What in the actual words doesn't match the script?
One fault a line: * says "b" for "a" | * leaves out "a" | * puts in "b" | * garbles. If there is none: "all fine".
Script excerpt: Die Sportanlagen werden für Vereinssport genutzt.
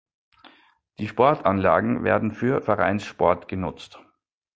all fine